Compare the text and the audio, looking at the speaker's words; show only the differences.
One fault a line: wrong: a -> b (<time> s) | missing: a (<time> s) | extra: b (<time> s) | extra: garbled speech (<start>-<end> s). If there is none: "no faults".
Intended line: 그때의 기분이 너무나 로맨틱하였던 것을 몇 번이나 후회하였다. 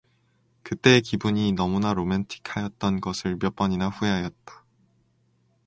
no faults